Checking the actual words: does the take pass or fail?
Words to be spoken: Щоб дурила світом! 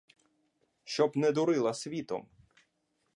fail